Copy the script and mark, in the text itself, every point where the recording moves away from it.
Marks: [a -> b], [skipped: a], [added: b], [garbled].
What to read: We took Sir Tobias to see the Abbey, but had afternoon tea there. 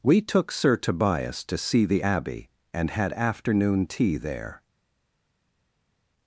We took Sir Tobias to see the Abbey, [but -> and] had afternoon tea there.